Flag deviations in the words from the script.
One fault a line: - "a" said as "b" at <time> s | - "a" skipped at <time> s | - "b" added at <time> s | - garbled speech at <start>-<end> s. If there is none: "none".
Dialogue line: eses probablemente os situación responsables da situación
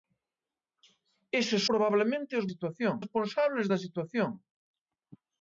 none